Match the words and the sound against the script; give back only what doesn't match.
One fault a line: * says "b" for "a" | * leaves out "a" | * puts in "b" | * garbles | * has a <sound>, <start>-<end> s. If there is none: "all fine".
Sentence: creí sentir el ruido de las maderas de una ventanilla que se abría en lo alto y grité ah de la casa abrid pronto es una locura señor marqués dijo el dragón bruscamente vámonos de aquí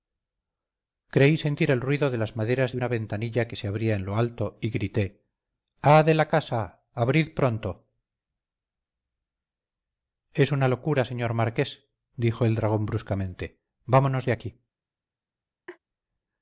* has a laugh, 15.7-15.8 s